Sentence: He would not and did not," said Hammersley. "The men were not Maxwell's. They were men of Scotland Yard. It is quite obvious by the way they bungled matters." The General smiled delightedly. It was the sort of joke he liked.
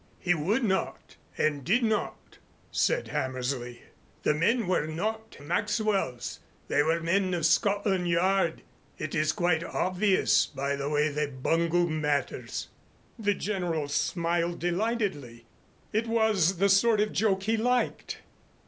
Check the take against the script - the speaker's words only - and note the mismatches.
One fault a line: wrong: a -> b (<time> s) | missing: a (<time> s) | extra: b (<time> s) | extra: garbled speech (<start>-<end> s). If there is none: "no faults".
no faults